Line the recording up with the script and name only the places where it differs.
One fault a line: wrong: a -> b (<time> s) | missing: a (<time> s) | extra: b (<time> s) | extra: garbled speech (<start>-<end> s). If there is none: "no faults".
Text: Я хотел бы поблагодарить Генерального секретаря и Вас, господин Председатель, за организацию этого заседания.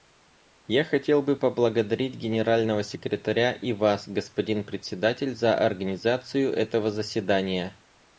no faults